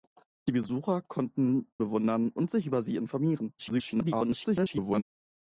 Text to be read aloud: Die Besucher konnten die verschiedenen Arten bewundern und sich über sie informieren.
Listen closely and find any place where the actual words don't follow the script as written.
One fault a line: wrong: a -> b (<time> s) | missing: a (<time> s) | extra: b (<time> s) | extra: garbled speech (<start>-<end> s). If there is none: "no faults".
missing: die verschiedenen Arten (1.7 s)
extra: garbled speech (3.6-5.0 s)